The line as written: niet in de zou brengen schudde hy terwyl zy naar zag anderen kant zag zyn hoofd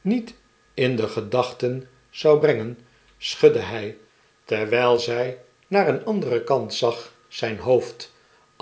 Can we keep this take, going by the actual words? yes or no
no